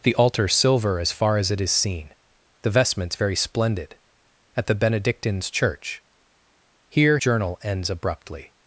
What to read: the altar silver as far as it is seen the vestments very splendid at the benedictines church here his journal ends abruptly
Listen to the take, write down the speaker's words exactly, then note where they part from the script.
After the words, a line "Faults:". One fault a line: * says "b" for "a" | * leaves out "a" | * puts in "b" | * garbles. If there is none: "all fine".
the altar silver as far as it is seen the vestments very splendid at the benedictines church here journal ends abruptly
Faults:
* leaves out "his"